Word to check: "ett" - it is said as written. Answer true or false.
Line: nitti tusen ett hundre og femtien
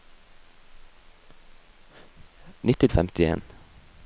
false